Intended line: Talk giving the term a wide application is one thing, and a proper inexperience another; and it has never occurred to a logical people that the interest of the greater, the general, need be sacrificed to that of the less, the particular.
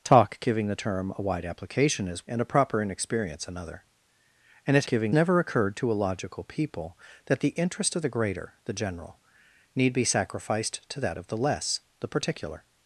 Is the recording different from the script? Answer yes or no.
yes